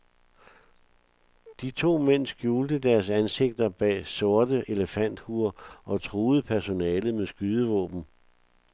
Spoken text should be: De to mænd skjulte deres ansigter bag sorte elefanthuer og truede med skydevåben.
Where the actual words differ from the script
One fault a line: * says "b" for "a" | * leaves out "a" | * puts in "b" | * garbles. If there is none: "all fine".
* puts in "personalet"